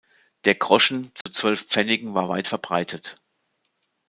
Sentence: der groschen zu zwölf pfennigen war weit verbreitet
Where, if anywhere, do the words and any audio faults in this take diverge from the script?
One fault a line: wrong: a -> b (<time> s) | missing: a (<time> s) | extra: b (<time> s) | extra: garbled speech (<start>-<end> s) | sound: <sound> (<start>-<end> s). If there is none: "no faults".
sound: dropout (1.2-1.3 s)